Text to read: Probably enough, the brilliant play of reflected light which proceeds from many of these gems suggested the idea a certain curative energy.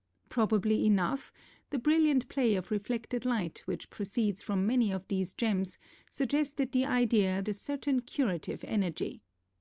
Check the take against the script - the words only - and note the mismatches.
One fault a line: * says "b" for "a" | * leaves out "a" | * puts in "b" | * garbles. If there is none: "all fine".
all fine